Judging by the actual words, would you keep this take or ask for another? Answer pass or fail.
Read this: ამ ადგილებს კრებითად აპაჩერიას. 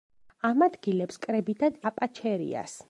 pass